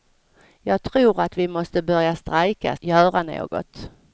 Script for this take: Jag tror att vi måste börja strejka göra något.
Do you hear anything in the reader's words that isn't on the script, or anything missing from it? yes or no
no